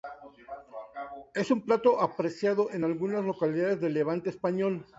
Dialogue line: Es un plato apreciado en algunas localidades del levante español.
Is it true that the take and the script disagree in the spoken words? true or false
false